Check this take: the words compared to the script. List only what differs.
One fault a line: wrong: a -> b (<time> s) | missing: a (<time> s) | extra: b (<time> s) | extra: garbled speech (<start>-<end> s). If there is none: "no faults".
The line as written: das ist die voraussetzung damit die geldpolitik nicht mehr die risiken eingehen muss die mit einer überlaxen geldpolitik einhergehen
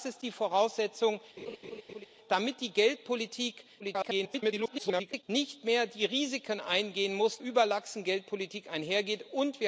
extra: garbled speech (3.8-5.2 s)
missing: die mit einer (7.4 s)